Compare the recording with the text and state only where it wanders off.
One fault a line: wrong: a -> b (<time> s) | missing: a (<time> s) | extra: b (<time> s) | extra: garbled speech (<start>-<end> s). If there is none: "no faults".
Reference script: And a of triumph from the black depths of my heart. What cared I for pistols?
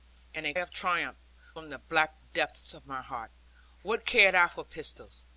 no faults